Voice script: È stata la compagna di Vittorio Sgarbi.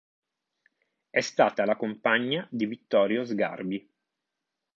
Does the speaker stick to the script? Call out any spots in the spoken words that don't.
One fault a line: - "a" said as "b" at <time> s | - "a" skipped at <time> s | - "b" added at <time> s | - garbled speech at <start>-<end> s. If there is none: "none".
none